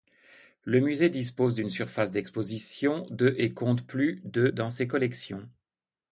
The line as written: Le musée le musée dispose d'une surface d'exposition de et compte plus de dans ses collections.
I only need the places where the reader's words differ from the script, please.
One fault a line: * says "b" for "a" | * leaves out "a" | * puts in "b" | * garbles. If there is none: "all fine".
* leaves out "le musée"